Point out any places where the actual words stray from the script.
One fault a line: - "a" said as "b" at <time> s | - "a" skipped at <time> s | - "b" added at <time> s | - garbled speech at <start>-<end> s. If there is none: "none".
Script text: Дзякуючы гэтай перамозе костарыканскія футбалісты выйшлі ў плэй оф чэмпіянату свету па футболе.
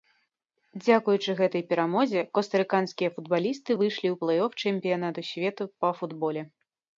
none